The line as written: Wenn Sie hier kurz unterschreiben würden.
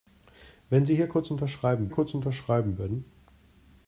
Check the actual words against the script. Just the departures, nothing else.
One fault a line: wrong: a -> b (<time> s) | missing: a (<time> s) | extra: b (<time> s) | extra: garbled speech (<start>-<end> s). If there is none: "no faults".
extra: kurz unterschreiben (1.9 s)